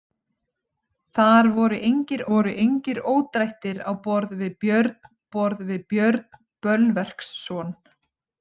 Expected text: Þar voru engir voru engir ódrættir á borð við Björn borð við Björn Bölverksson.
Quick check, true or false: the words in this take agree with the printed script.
true